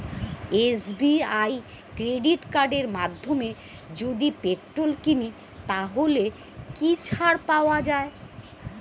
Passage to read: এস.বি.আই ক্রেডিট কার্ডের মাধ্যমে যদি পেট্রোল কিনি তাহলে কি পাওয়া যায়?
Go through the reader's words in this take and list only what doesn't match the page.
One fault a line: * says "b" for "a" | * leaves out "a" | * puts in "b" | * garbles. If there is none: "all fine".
* puts in "ছাড়"